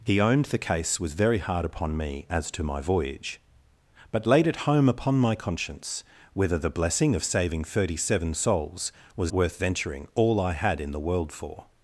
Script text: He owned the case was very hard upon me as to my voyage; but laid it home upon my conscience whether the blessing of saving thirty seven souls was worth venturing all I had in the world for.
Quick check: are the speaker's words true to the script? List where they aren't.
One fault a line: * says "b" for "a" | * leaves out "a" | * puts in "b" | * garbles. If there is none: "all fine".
all fine